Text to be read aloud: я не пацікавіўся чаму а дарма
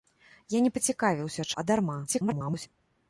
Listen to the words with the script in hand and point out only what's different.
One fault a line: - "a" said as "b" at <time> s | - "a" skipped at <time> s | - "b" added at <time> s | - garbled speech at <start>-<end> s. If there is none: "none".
- "чаму" skipped at 1.5 s
- garbled speech at 2.1-2.7 s